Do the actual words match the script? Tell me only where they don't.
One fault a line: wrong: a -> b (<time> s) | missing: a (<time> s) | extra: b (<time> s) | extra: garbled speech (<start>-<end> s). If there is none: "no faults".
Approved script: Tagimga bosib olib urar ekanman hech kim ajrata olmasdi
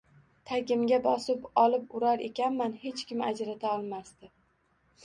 no faults